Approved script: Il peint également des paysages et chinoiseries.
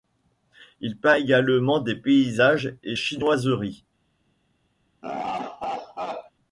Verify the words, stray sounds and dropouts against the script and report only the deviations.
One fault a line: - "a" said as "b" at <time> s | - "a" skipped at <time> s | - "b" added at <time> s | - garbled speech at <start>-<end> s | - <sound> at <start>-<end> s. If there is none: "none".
- laugh at 5.0-6.3 s